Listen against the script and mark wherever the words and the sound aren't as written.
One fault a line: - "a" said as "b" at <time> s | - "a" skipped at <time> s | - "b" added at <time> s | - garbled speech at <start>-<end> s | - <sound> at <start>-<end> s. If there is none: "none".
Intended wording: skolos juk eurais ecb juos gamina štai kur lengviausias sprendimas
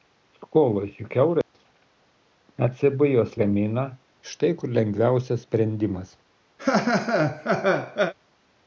- dropout at 1.4-1.5 s
- laugh at 6.6-8.1 s